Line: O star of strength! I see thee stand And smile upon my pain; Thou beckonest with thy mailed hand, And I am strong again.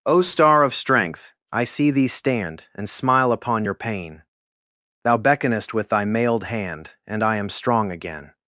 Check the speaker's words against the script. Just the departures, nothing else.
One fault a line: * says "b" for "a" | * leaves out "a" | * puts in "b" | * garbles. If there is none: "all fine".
* says "your" for "my"